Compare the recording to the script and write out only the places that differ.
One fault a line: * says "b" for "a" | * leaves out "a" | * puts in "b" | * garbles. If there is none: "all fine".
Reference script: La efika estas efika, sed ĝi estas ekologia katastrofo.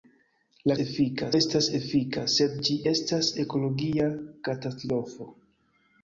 all fine